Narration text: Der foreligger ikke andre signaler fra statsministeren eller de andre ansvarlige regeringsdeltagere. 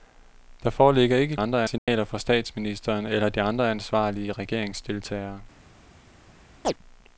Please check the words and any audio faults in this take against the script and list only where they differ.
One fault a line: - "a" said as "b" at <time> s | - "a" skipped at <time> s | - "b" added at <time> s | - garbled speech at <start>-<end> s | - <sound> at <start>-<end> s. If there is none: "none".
- dropout at 1.8-1.9 s
- chirp at 6.6-6.7 s